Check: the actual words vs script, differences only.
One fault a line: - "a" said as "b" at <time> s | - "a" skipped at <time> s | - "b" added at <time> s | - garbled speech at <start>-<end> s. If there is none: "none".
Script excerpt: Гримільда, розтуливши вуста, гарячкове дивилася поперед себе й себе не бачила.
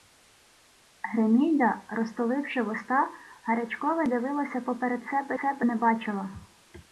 none